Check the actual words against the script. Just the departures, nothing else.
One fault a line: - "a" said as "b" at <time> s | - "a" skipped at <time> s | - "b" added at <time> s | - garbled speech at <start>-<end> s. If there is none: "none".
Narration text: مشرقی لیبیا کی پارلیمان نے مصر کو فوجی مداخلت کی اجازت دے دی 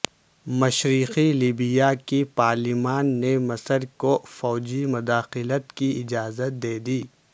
none